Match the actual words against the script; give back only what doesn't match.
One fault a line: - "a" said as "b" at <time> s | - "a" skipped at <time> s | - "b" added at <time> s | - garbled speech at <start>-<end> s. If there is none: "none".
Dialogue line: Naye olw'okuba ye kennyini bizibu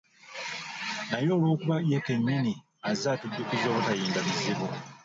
- "azze atujjukiza obutayimba" added at 2.9 s